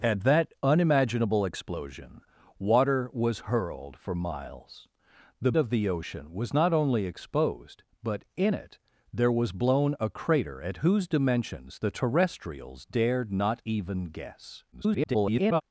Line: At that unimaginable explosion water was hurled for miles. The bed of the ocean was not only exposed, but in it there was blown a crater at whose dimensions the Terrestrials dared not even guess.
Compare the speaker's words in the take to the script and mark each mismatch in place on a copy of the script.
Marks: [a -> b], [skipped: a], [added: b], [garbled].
At that unimaginable explosion water was hurled for miles. The [skipped: bed] of the ocean was not only exposed, but in it there was blown a crater at whose dimensions the Terrestrials dared not even guess. [garbled]